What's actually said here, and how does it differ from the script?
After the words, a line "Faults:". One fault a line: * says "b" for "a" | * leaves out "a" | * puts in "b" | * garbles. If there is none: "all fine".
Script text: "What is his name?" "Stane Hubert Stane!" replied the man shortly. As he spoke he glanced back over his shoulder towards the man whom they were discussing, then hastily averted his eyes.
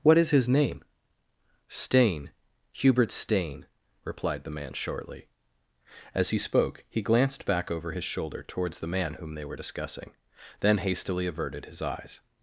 "What is his name?" "Stane Hubert Stane!" replied the man shortly. As he spoke he glanced back over his shoulder towards the man whom they were discussing, then hastily averted his eyes.
Faults:
all fine